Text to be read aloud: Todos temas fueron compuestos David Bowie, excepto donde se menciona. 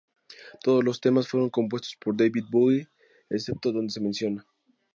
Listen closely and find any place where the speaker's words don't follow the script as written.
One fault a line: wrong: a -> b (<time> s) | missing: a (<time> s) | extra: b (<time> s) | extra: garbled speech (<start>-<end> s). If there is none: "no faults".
extra: los (0.8 s)
extra: por (1.9 s)